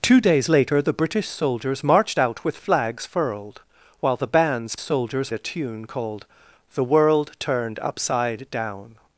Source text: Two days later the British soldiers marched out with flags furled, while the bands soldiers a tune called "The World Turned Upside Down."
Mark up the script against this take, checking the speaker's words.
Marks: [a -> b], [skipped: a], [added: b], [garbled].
Two days later the British soldiers marched out with flags furled, while the bands soldiers a tune called "The World Turned Upside Down."